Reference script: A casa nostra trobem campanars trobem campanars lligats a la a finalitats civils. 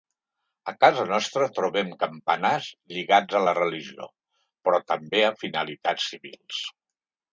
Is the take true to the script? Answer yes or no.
no